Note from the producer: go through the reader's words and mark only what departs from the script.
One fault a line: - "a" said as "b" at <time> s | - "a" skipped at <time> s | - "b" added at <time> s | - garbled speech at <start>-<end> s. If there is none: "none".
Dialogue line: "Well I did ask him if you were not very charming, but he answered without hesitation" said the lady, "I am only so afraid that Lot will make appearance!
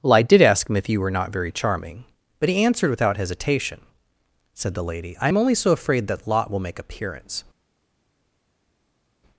none